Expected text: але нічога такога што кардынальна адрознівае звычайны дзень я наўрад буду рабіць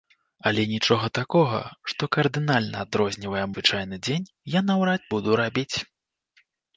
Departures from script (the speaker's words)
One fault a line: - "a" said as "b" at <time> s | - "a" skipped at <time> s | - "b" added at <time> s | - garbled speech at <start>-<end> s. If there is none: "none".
none